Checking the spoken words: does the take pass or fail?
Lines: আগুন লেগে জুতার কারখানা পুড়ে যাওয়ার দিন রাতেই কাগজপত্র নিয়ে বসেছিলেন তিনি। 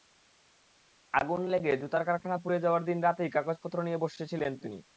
pass